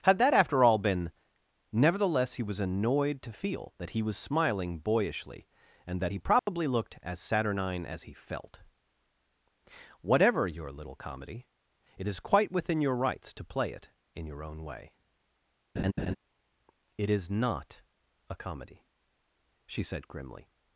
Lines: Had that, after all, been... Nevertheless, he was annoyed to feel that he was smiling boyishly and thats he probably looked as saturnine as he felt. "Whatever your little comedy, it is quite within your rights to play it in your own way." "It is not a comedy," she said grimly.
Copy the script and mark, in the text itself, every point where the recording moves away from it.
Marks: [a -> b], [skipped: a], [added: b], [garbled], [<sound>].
Had that, after all, been... Nevertheless, he was annoyed to feel that he was smiling boyishly and [thats -> that] he probably [dropout] looked as saturnine as he felt. "Whatever your little comedy, it is quite within your rights to play it in your own way." [laugh] "It is not a comedy," she said grimly.